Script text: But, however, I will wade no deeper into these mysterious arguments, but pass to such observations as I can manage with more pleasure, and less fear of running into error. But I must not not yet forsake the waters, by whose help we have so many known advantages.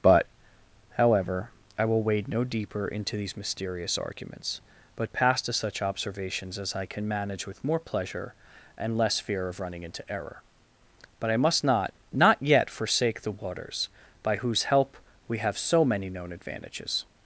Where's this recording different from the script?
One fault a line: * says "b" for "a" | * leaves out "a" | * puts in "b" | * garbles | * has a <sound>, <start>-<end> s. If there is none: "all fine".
all fine